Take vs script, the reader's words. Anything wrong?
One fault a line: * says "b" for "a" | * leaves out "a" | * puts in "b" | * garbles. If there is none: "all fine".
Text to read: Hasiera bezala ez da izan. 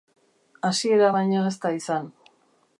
* says "baino" for "bezala"